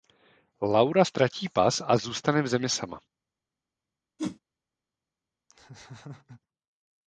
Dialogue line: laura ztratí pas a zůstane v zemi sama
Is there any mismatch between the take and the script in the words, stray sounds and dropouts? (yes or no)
yes